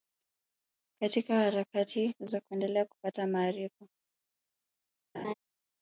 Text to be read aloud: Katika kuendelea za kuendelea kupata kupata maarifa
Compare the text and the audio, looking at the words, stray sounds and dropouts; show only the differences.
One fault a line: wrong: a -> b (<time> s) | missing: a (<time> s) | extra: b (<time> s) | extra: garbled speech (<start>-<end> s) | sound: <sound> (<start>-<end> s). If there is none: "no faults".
wrong: kuendelea -> harakati (1.4 s)
missing: kupata (3.3 s)
sound: laugh (5.1-5.3 s)